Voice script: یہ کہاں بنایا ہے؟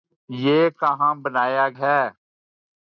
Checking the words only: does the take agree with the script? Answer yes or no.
yes